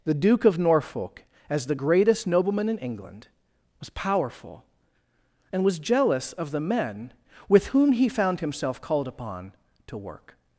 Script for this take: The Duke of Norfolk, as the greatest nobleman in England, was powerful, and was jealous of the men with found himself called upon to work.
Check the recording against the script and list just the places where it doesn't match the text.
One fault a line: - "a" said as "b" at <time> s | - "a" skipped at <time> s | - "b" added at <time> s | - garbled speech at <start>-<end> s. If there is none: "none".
- "whom he" added at 7.7 s